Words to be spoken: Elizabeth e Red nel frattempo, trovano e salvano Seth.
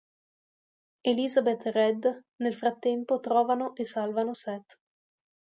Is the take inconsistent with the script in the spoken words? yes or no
no